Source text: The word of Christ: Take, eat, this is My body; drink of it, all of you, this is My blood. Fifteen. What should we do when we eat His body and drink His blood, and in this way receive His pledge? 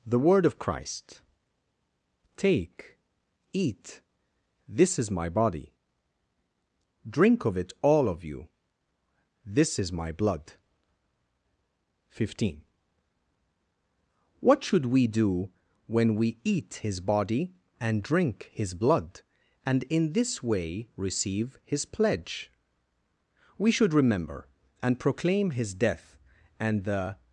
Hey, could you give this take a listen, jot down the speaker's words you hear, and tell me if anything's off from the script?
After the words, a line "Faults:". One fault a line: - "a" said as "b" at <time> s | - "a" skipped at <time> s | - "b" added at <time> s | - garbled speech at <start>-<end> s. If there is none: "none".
The word of Christ: Take, eat, this is My body; drink of it, all of you, this is My blood. Fifteen. What should we do when we eat His body and drink His blood, and in this way receive His pledge? We should remember and proclaim His death and the
Faults:
- "We should remember and proclaim His death and the" added at 23.6 s